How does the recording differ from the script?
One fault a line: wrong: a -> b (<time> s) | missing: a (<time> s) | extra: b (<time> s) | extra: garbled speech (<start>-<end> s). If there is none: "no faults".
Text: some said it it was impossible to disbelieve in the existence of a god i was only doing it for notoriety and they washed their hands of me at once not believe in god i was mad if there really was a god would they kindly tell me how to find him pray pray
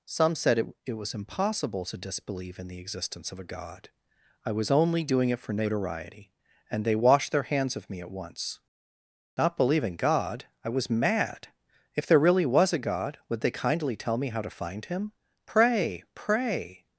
no faults